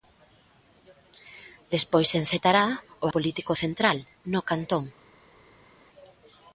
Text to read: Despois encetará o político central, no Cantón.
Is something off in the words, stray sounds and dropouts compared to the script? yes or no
no